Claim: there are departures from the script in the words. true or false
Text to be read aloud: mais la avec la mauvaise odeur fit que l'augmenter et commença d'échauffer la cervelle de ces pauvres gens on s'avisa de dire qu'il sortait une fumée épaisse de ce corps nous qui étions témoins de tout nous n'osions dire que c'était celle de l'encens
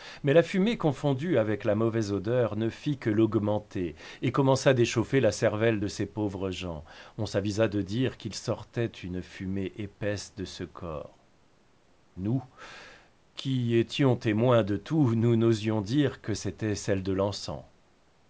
true